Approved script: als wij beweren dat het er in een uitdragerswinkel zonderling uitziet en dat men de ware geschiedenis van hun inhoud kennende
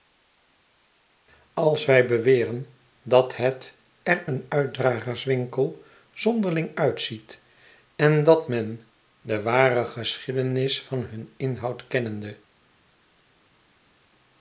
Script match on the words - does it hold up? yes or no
no